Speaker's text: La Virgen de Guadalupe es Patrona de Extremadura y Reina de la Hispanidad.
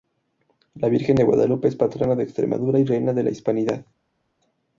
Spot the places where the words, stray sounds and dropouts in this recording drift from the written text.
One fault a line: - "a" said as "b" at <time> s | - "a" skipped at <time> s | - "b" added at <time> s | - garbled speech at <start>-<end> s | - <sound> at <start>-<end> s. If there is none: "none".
none